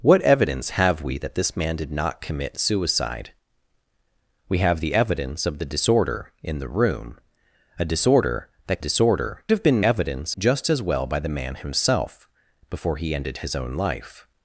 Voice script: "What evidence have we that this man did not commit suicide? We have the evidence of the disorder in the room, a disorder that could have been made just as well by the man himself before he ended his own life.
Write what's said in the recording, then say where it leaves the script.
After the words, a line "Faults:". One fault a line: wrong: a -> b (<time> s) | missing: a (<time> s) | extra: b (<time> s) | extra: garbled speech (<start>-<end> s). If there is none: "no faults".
"What evidence have we that this man did not commit suicide? We have the evidence of the disorder in the room, a disorder that disorder have been evidence just as well by the man himself before he ended his own life.
Faults:
wrong: could -> disorder (8.8 s)
wrong: made -> evidence (9.8 s)